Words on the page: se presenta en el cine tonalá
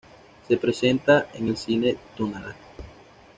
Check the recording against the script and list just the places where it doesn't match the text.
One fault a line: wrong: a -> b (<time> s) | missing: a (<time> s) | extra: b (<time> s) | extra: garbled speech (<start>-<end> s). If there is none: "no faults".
no faults